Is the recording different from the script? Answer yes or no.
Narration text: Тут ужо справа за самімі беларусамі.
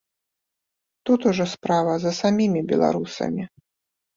no